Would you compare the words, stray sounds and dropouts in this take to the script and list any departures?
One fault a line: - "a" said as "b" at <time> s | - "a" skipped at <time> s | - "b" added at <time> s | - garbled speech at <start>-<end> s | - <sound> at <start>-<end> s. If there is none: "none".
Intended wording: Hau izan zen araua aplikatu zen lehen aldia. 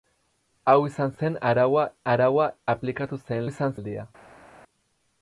- "araua" added at 2.1 s
- "lehen" said as "izan" at 3.5 s